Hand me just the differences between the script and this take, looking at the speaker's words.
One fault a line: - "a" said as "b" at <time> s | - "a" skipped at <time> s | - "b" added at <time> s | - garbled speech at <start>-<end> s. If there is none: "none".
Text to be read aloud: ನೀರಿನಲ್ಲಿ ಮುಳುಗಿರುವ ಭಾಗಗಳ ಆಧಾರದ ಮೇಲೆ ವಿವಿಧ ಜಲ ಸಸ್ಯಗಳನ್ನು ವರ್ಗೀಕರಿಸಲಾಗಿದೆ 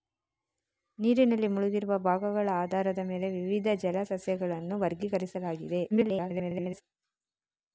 - garbled speech at 5.9-6.8 s